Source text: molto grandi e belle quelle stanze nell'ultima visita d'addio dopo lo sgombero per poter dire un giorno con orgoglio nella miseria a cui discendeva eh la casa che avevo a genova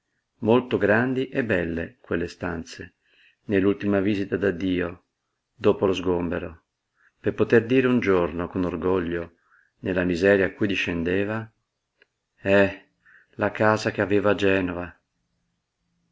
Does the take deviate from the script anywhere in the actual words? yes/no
no